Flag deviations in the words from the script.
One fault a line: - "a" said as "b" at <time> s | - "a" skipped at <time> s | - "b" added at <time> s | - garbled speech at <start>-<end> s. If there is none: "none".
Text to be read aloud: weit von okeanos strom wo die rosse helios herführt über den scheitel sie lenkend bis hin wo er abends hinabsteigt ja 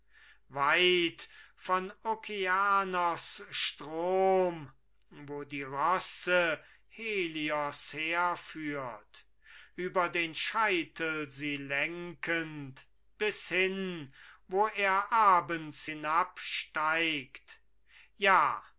none